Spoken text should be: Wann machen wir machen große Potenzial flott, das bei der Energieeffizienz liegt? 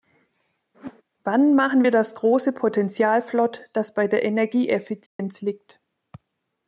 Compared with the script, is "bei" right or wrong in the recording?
right